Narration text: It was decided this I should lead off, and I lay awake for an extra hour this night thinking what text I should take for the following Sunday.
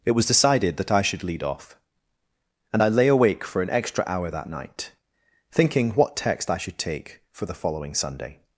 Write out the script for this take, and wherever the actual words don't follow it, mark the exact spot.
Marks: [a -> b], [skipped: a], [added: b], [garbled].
It was decided [this -> that] I should lead off, and I lay awake for an extra hour [this -> that] night thinking what text I should take for the following Sunday.